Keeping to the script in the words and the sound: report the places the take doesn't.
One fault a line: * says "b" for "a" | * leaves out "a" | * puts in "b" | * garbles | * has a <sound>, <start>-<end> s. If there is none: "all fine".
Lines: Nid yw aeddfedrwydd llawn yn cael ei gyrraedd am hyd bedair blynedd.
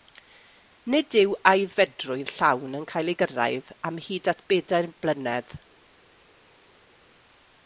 * puts in "at"